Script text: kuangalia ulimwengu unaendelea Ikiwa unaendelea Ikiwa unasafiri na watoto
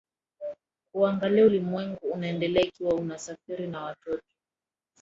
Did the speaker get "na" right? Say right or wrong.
right